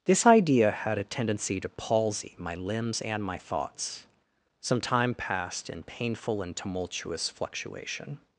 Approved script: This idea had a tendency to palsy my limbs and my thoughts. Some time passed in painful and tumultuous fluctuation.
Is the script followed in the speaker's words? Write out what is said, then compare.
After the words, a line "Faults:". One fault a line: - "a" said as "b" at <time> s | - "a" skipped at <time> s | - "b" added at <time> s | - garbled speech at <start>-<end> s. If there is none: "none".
This idea had a tendency to palsy my limbs and my thoughts. Some time passed in painful and tumultuous fluctuation.
Faults:
none